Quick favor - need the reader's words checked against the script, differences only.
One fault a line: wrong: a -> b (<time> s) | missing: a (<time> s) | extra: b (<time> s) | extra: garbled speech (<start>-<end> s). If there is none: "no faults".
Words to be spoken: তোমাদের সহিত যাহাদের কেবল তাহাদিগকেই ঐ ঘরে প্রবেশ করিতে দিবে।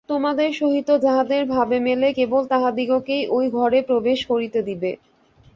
extra: ভাবে মেলে (1.5 s)